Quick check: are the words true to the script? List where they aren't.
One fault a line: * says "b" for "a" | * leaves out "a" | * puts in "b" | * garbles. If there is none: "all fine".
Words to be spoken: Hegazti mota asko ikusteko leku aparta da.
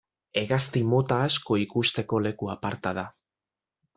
all fine